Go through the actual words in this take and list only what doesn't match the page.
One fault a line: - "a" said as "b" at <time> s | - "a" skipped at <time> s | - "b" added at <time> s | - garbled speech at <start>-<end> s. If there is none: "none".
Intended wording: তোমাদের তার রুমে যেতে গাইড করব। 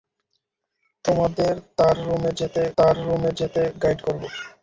- "তার রুমে যেতে" added at 2.8 s